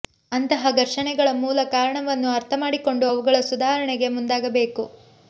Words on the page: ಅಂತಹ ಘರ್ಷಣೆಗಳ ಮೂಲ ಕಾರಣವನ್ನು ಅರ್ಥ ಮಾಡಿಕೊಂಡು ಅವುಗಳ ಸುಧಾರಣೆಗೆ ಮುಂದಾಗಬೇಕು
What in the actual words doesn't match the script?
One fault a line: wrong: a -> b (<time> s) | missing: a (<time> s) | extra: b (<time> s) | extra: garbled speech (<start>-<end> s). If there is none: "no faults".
no faults